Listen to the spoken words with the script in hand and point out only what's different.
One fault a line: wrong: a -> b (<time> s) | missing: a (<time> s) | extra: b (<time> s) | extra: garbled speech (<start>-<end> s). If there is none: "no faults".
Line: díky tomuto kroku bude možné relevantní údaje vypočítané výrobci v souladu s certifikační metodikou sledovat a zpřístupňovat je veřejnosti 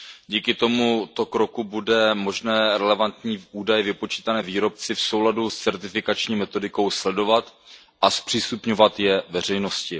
no faults